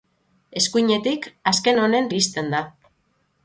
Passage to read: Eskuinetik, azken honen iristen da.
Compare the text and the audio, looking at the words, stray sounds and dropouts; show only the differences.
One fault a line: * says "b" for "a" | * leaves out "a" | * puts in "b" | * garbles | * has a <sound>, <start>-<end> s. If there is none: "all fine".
all fine